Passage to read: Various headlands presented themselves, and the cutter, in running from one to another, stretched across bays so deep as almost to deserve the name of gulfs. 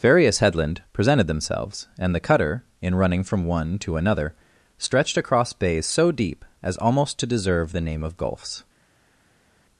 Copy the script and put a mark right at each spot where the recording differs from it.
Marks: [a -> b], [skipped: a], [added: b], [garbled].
Various [headlands -> headland] presented themselves, and the cutter, in running from one to another, stretched across bays so deep as almost to deserve the name of gulfs.